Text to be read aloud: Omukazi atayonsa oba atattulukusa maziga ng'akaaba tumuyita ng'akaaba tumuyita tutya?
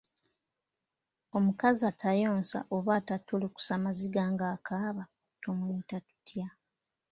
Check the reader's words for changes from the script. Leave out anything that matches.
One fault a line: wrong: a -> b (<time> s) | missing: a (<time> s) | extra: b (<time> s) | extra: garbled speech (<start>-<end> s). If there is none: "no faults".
missing: ng'akaaba tumuyita (6.0 s)